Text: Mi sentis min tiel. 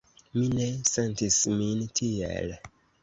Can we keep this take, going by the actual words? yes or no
no